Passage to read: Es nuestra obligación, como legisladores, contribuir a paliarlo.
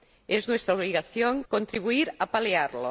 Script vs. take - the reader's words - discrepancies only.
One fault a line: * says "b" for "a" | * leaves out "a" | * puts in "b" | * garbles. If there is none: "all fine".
* leaves out "como legisladores"